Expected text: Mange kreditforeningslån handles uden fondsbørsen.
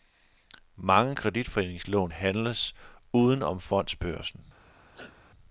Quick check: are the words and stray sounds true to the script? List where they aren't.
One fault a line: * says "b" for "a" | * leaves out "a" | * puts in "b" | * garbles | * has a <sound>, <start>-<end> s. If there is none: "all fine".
* puts in "om"
* has a sneeze, 4.9-5.2 s